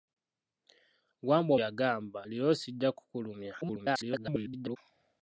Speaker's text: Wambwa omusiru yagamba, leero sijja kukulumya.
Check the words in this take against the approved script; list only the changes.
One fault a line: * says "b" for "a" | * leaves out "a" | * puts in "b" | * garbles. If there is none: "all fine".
* leaves out "omusiru"
* garbles